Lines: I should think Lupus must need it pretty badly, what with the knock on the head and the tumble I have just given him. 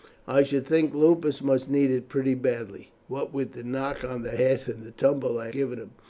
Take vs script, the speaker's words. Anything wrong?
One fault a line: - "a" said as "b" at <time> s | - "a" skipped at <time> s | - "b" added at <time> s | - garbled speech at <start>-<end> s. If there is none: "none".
- "have just" skipped at 5.5 s